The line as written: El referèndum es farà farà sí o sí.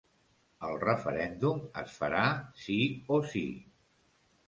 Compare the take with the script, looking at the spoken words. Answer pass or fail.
fail